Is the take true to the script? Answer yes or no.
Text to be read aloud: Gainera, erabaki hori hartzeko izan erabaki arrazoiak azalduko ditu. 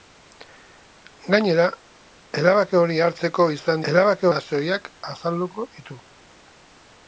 yes